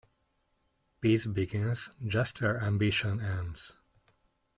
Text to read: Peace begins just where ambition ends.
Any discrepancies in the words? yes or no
no